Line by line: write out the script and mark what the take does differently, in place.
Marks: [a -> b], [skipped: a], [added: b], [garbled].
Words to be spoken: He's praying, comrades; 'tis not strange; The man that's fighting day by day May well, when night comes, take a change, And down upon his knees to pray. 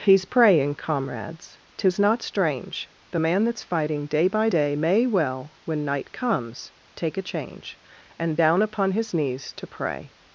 He's praying, comrades; 'tis not strange; The man that's fighting day by day May well, when night comes, take a change, And down upon his knees to pray.